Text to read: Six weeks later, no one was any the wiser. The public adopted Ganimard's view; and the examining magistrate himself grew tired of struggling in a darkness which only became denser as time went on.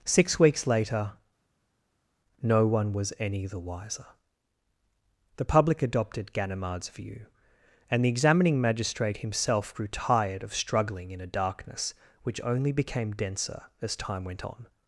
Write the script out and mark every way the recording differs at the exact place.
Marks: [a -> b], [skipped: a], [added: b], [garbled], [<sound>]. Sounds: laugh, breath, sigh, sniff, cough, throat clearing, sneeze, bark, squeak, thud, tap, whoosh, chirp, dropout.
Six weeks later, no one was any the wiser. The public adopted Ganimard's view; and the examining magistrate himself grew tired of struggling in a darkness which only became denser as time went on.